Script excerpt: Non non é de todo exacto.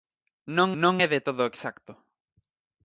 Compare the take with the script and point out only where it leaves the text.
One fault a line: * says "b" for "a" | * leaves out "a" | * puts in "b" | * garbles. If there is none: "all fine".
all fine